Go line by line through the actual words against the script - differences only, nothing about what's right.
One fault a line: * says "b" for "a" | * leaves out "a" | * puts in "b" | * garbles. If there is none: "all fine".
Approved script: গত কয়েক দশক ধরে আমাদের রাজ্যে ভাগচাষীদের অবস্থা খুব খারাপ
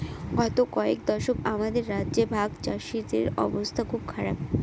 * leaves out "ধরে"